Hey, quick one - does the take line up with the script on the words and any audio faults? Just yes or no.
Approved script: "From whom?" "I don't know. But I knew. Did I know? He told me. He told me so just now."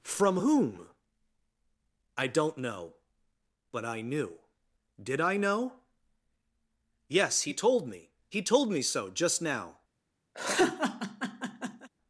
no